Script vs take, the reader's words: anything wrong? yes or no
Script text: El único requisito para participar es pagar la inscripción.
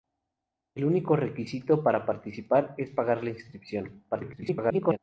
yes